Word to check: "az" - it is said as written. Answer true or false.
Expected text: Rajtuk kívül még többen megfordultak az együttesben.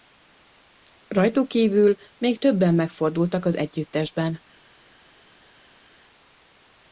true